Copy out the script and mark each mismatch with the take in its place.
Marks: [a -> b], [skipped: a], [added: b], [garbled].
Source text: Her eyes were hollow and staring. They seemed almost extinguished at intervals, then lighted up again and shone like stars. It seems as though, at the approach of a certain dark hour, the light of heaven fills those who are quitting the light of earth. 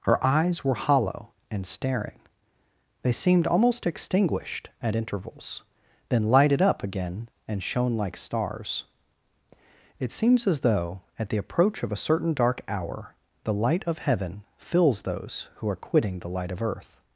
Her eyes were hollow and staring. They seemed almost extinguished at intervals, then lighted up again and shone like stars. It seems as though, at the approach of a certain dark hour, the light of heaven fills those who are quitting the light of earth.